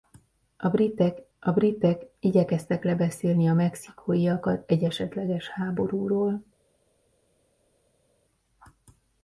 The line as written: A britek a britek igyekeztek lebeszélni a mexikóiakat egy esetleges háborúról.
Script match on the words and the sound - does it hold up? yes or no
yes